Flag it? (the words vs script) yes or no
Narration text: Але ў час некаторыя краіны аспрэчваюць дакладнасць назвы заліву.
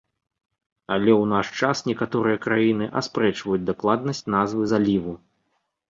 yes